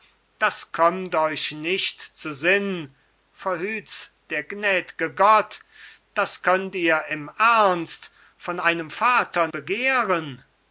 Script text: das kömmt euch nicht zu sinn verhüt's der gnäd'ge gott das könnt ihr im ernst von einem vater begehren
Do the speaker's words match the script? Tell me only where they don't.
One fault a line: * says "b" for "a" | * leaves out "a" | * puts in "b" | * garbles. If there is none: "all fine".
all fine